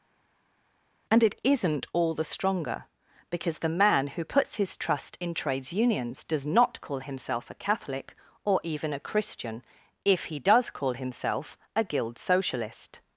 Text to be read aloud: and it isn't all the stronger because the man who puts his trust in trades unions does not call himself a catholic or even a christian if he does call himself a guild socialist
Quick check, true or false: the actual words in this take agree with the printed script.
true